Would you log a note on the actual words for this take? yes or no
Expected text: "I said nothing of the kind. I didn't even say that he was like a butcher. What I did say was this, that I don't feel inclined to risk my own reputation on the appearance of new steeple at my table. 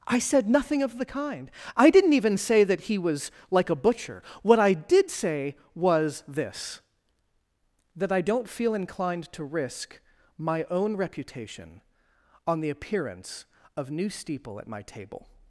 no